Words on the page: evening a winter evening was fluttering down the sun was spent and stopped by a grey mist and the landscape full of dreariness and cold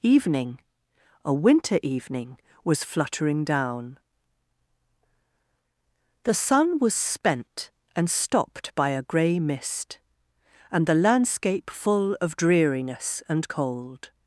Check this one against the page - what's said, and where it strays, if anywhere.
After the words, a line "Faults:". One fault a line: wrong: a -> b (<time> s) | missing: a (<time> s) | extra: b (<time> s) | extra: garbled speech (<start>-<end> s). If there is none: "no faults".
evening a winter evening was fluttering down the sun was spent and stopped by a grey mist and the landscape full of dreariness and cold
Faults:
no faults